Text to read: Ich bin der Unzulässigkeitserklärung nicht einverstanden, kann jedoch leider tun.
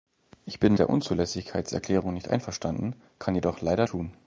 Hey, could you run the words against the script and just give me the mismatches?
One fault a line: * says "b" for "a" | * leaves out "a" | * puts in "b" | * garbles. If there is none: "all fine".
all fine